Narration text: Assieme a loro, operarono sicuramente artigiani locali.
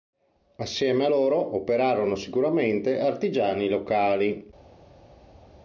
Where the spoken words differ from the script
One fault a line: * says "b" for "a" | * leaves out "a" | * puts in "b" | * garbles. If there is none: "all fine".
all fine